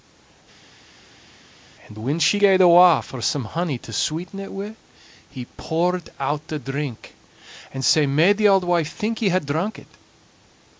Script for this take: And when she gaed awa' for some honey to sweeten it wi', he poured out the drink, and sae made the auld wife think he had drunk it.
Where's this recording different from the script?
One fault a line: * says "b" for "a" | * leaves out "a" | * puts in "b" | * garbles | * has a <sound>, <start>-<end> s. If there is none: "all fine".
all fine